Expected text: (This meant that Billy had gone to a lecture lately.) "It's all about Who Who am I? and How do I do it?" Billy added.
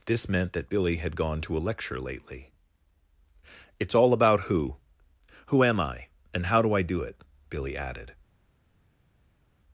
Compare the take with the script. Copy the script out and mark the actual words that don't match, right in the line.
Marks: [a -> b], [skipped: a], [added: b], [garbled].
(This meant that Billy had gone to a lecture lately.) "It's all about Who Who am I? and How do I do it?" Billy added.